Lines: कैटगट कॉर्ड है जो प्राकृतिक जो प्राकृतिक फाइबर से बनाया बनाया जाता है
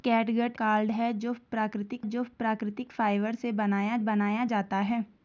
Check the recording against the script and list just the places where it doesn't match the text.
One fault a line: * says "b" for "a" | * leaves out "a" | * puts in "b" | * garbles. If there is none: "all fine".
all fine